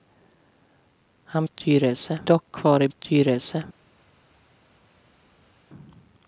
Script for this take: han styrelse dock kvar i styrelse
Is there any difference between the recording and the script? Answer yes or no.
no